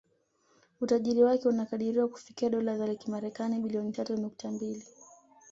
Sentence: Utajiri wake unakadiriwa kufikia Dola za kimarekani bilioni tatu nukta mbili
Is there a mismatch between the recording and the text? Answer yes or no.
no